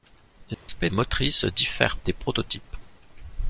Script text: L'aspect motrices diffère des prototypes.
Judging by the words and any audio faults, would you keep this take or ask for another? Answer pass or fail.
fail